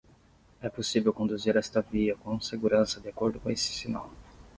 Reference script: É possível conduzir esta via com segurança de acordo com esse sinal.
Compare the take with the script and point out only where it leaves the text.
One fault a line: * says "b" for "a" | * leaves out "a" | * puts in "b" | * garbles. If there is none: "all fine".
all fine